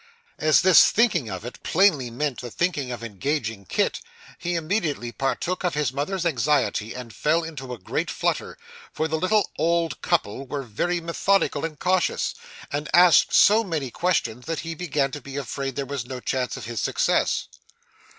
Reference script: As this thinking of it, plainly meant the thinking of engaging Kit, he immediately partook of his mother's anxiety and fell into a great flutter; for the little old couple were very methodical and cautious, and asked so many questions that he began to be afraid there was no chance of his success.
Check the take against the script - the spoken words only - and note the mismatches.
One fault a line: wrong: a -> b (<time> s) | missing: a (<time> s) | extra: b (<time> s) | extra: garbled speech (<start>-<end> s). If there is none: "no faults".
no faults